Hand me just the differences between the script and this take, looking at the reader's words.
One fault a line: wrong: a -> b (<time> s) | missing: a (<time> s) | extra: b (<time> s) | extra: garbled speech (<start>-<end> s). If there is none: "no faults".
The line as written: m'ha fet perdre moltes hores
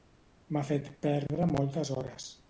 no faults